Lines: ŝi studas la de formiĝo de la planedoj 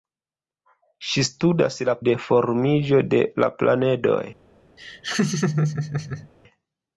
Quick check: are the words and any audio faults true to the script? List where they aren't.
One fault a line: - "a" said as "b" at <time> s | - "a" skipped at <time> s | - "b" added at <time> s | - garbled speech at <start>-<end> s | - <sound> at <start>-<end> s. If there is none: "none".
- laugh at 4.8-6.3 s